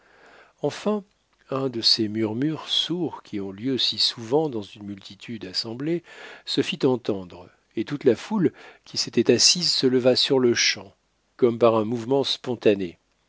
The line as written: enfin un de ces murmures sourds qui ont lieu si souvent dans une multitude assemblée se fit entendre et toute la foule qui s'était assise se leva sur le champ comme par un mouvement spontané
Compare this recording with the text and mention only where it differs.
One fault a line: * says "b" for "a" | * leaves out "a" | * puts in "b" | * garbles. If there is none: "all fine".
all fine